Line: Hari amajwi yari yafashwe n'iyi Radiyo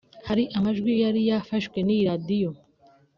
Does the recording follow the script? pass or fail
pass